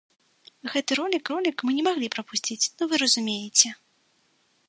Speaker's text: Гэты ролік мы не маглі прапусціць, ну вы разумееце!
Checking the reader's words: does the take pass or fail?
fail